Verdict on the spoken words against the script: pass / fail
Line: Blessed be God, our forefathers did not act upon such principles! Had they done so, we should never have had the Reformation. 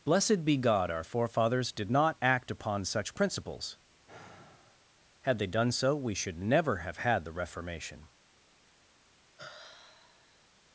pass